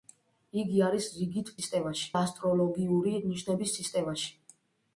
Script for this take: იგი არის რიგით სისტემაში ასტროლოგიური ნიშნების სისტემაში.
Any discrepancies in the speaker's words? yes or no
no